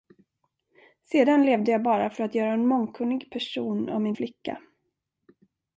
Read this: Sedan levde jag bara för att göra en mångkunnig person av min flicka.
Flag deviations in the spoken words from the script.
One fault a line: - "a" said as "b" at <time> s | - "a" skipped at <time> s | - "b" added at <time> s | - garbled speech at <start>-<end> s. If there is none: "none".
none